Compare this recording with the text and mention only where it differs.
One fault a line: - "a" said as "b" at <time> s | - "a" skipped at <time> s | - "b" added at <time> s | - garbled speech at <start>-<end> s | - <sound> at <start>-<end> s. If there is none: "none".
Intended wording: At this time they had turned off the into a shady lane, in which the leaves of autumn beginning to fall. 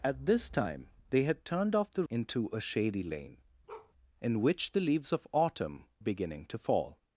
- bark at 3.7-3.9 s